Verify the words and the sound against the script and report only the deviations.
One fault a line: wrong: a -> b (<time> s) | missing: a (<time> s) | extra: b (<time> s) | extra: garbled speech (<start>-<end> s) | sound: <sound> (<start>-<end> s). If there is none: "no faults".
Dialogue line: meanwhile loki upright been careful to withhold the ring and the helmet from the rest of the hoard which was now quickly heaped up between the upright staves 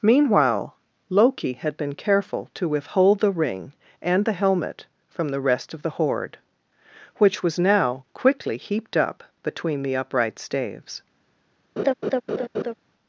wrong: upright -> had (1.5 s)
sound: laugh (11.8-12.7 s)